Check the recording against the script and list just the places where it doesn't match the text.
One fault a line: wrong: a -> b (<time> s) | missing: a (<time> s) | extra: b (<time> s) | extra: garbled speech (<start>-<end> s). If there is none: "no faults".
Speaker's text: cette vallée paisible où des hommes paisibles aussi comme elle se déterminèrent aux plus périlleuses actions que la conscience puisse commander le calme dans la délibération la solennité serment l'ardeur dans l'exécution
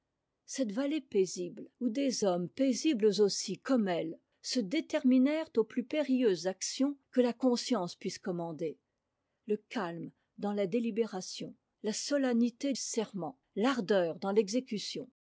no faults